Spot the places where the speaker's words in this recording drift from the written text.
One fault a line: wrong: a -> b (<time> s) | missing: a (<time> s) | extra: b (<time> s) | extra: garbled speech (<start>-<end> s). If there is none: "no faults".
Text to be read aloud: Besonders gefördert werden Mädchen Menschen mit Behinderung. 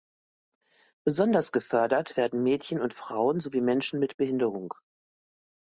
extra: und Frauen sowie (2.8 s)